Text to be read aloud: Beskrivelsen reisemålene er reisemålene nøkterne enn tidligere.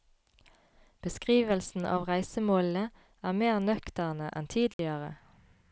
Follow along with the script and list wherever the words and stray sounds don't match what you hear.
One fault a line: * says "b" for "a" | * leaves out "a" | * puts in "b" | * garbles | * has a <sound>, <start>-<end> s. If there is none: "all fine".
* puts in "av"
* says "mer" for "reisemålene"
* has a dropout, 4.7-4.8 s